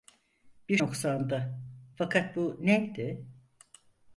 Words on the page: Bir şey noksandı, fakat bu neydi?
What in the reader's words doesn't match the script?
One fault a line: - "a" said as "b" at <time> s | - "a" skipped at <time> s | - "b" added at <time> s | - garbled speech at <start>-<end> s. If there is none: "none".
- "şey" skipped at 0.8 s